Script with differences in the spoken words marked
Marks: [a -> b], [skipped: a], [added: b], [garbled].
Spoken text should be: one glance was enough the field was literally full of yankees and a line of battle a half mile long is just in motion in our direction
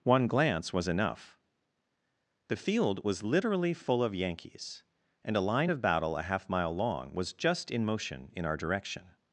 one glance was enough the field was literally full of yankees and a line of battle a half mile long [is -> was] just in motion in our direction